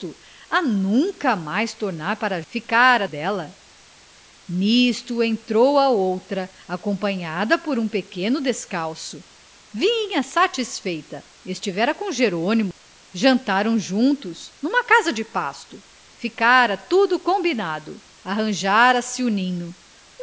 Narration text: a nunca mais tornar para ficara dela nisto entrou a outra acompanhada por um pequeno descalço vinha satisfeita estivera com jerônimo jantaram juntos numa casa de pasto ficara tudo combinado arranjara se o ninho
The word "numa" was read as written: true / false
true